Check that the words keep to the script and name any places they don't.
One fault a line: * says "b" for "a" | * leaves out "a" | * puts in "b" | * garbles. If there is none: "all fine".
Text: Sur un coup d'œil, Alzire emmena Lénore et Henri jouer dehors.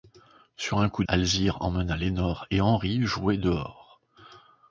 * leaves out "d'œil"